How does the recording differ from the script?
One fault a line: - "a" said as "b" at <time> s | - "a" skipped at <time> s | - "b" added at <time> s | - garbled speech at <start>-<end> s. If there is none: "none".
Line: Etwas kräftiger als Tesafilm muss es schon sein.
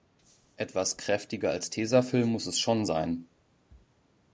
none